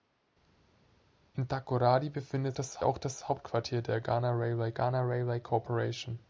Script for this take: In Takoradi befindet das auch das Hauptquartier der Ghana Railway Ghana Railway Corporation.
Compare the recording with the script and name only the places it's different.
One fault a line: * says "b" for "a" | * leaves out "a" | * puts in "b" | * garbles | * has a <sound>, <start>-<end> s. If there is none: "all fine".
all fine